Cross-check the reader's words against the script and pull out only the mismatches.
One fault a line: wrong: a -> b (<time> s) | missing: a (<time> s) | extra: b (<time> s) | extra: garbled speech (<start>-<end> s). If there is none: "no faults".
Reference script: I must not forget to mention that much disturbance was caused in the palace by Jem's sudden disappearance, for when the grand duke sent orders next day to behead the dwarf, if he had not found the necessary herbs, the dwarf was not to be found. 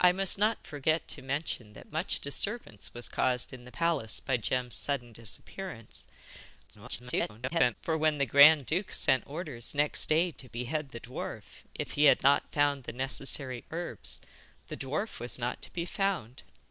extra: garbled speech (6.7-7.8 s)